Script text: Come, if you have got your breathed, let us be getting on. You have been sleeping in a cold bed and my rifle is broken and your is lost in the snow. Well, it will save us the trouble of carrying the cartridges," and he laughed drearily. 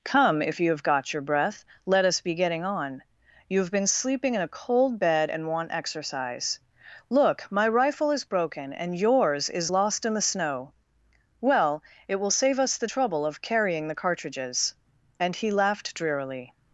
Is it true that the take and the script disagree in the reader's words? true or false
true